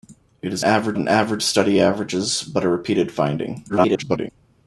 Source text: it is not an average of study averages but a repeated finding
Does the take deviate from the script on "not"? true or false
true